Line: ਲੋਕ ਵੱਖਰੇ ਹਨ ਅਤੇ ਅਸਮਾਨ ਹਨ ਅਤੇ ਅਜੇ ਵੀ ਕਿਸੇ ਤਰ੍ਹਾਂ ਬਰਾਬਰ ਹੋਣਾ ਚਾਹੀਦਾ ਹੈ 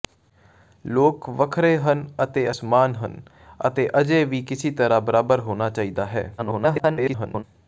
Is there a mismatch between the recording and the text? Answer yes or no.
yes